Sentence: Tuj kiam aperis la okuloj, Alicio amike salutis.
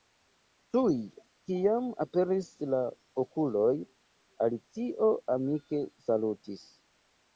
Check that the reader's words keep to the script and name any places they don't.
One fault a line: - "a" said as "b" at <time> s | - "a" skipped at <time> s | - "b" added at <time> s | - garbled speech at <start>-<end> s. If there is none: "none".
none